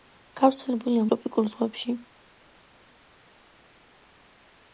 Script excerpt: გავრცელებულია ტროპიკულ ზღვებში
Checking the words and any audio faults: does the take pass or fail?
pass